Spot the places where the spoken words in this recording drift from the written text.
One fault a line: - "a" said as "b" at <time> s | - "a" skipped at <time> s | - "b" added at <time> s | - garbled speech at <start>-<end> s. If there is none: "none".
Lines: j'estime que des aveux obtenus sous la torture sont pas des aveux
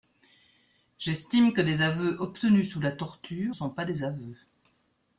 none